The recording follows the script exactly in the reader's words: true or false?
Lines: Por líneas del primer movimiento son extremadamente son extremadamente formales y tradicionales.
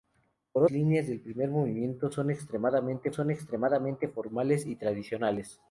true